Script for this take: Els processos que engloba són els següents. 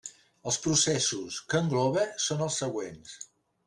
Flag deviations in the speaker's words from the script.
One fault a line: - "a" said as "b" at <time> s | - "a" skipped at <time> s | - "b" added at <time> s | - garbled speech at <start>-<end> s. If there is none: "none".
none